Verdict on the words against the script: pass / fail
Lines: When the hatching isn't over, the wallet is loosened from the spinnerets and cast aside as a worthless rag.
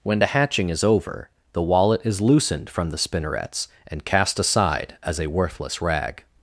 fail